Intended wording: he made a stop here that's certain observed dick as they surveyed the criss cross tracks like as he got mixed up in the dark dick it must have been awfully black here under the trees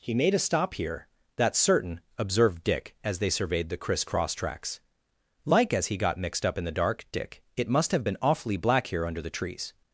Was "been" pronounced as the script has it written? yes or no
yes